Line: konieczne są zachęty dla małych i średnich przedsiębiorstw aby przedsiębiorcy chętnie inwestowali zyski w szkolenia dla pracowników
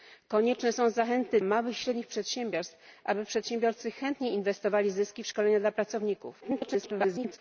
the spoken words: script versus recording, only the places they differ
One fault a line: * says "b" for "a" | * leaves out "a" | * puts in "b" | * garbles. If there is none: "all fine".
* leaves out "dla"
* garbles